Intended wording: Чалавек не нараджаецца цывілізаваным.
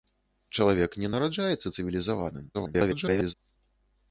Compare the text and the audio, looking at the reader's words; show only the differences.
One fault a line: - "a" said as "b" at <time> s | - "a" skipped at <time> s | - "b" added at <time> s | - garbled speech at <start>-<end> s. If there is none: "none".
- garbled speech at 2.5-3.3 s